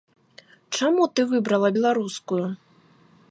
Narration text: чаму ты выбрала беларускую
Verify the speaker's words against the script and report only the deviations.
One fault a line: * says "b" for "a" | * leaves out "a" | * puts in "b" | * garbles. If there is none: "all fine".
all fine